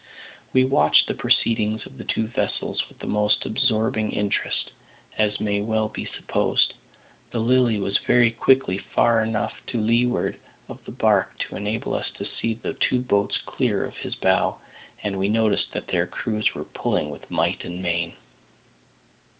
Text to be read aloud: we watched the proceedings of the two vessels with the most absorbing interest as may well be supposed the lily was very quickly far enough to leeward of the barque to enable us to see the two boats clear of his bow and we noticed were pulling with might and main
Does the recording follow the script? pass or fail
fail